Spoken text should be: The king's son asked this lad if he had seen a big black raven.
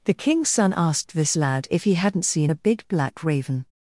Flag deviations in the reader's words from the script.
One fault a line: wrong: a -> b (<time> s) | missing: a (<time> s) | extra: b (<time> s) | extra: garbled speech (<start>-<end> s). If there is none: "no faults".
wrong: had -> hadn't (1.9 s)